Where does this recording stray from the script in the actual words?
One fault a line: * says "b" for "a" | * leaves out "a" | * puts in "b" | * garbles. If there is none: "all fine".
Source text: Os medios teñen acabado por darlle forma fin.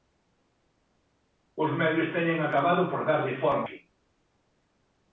all fine